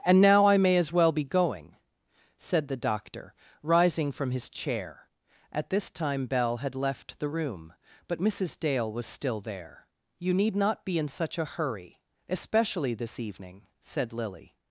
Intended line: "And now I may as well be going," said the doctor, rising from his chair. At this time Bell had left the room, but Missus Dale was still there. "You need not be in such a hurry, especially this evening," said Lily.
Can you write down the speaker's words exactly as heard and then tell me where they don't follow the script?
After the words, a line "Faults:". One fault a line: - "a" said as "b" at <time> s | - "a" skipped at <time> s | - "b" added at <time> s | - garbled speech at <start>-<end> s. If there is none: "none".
"And now I may as well be going," said the doctor, rising from his chair. At this time Bell had left the room, but Missus Dale was still there. "You need not be in such a hurry, especially this evening," said Lily.
Faults:
none